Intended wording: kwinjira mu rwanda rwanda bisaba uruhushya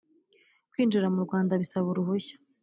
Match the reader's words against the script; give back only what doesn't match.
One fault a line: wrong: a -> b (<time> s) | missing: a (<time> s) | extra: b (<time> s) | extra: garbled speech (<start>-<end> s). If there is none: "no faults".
missing: rwanda (1.5 s)